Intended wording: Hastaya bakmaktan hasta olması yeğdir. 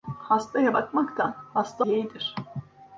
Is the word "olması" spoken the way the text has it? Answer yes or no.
no